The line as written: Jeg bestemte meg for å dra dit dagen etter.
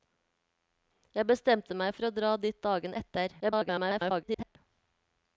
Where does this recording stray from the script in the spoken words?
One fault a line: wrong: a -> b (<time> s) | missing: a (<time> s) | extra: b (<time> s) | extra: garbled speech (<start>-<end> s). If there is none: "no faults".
extra: garbled speech (3.4-4.6 s)